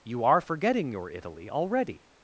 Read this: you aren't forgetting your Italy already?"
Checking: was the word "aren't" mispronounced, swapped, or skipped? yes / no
yes